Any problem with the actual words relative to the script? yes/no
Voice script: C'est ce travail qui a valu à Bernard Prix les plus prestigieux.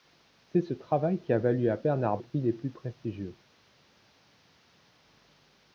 no